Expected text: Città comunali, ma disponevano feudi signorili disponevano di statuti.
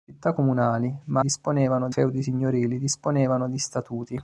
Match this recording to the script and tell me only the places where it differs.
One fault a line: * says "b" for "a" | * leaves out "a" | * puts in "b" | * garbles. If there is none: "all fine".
all fine